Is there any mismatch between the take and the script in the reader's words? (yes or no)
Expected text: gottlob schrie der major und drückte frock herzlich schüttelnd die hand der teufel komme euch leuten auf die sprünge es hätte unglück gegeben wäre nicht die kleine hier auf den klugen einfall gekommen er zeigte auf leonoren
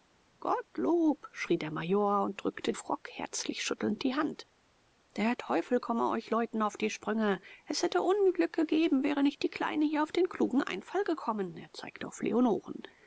no